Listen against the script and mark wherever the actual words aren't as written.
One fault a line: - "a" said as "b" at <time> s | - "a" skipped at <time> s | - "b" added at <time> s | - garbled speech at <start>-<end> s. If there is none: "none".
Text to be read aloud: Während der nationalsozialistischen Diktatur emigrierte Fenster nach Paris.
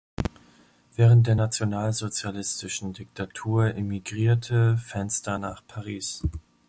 none